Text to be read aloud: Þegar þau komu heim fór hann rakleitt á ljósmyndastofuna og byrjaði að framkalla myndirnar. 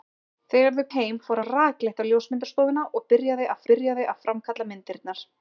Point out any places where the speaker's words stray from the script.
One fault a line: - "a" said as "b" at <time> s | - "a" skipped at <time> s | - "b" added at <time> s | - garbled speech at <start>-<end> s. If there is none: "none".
- "komu" skipped at 0.8 s
- "hann" skipped at 1.4 s
- "byrjaði að" added at 3.7 s